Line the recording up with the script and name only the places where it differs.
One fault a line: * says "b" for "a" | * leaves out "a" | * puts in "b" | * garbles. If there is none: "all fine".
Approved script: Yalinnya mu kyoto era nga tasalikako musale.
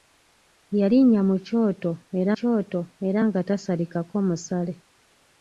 * puts in "kyoto era"